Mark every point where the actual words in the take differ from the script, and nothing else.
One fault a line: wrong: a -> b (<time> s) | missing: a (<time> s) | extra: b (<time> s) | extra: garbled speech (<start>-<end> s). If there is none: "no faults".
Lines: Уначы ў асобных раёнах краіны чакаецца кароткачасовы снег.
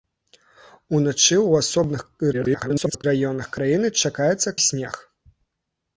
extra: garbled speech (2.3-3.0 s)
missing: кароткачасовы (4.5 s)